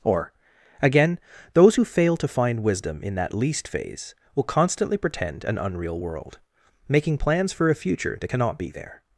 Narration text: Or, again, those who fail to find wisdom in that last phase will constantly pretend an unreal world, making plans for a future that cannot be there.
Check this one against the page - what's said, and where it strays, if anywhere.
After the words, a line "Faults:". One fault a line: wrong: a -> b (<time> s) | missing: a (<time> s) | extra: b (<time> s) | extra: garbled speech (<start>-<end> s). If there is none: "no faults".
Or, again, those who fail to find wisdom in that least phase will constantly pretend an unreal world, making plans for a future that cannot be there.
Faults:
wrong: last -> least (3.3 s)